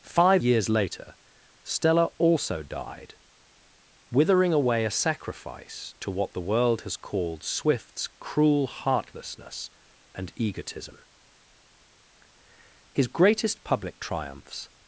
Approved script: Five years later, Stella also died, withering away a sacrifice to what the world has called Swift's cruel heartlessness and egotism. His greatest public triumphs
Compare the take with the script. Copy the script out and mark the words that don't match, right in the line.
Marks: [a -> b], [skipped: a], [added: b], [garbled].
Five years later, Stella also died, withering away a sacrifice to what the world has called Swift's cruel heartlessness and egotism. His greatest public triumphs